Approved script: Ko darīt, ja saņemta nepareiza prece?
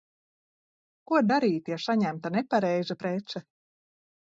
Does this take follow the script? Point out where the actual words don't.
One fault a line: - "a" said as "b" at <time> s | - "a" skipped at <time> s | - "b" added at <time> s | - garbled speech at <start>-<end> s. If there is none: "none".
none